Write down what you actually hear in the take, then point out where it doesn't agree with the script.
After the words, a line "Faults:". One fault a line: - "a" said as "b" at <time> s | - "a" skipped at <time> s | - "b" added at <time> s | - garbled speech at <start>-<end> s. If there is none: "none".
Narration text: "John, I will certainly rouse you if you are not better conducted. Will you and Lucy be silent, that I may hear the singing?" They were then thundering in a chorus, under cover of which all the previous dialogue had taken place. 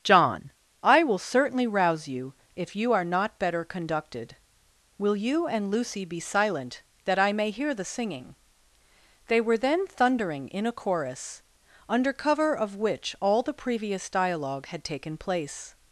"John, I will certainly rouse you if you are not better conducted. Will you and Lucy be silent, that I may hear the singing?" They were then thundering in a chorus, under cover of which all the previous dialogue had taken place.
Faults:
none